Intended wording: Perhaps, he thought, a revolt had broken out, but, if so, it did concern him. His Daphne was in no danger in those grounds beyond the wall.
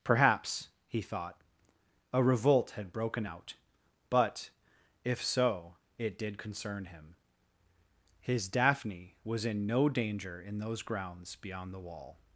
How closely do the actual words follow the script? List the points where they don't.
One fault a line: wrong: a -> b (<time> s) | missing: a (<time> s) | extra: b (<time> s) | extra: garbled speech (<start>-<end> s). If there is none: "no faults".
no faults